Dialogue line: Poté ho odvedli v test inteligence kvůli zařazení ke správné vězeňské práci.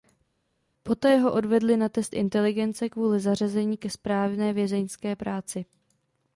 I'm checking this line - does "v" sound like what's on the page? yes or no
no